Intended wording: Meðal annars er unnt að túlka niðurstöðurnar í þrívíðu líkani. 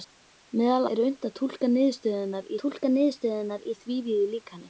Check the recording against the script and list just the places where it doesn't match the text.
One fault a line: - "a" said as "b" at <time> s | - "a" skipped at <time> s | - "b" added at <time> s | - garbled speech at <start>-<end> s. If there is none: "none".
- "annars" skipped at 0.9 s
- "túlka niðurstöðurnar" added at 2.6 s